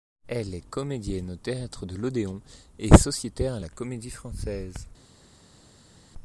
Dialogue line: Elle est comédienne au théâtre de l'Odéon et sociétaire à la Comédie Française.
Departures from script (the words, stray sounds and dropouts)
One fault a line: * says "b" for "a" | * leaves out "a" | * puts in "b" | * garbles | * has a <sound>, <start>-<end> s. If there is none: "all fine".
all fine